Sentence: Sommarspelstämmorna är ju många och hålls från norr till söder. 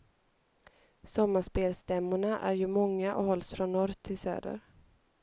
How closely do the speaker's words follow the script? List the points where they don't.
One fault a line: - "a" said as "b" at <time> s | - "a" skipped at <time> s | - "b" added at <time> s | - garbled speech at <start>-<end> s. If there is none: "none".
none